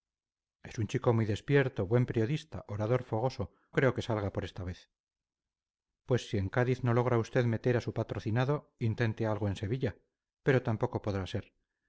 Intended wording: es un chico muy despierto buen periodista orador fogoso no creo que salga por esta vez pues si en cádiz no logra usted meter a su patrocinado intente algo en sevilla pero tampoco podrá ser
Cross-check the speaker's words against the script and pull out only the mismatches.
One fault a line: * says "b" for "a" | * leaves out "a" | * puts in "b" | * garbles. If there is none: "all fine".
* leaves out "no"